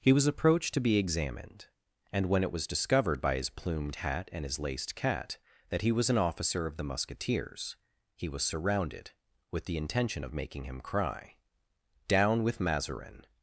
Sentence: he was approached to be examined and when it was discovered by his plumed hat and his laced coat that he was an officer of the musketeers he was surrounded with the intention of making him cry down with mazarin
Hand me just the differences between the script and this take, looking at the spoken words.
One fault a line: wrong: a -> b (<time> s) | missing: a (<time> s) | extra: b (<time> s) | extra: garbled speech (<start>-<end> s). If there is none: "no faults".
wrong: coat -> cat (5.0 s)